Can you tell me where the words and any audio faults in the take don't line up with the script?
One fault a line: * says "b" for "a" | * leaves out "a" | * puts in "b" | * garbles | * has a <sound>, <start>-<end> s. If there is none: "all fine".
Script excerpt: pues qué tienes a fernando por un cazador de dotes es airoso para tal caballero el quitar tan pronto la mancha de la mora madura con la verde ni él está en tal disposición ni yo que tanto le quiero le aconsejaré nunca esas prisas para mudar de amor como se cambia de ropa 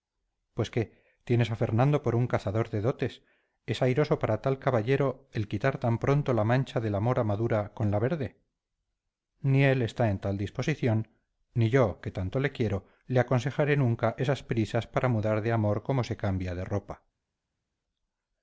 all fine